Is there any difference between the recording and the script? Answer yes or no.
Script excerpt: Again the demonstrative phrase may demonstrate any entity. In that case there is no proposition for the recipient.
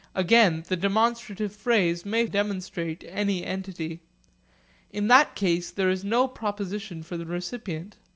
no